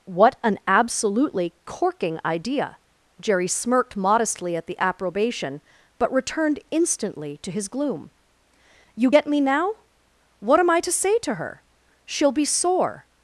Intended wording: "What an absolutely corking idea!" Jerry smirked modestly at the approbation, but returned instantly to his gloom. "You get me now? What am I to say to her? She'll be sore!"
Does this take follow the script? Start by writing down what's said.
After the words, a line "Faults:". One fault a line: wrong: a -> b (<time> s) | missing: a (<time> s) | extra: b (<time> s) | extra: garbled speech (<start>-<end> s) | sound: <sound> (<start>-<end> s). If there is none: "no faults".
"What an absolutely corking idea!" Jerry smirked modestly at the approbation, but returned instantly to his gloom. "You get me now? What am I to say to her? She'll be sore!"
Faults:
no faults